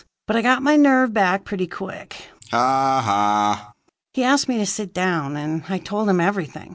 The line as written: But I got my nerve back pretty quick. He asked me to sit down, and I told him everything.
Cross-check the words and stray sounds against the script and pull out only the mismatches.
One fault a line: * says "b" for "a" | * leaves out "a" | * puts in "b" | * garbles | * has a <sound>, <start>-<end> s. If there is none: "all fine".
* has a laugh, 2.4-3.7 s